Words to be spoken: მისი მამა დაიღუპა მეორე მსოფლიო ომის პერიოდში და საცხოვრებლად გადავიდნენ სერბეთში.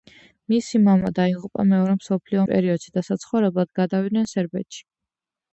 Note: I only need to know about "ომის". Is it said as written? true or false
false